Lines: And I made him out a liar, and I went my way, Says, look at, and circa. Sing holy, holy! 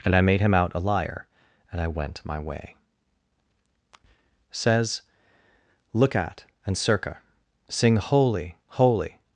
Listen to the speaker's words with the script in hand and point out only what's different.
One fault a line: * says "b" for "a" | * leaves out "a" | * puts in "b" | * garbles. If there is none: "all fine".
all fine